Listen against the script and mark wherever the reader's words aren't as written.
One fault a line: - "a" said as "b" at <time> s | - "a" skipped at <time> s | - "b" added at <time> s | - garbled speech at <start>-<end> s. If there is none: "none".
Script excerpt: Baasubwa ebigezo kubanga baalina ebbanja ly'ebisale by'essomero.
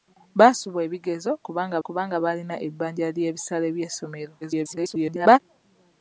- "kubanga" added at 1.9 s
- garbled speech at 4.4-5.4 s